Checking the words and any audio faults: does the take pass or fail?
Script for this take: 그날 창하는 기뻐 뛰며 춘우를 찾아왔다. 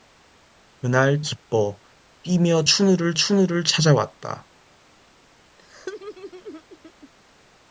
fail